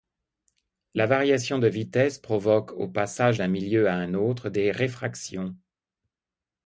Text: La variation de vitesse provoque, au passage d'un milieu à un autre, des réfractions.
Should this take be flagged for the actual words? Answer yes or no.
no